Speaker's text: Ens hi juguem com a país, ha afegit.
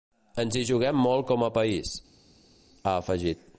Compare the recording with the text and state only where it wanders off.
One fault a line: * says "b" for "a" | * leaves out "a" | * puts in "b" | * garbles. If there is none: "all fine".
* puts in "molt"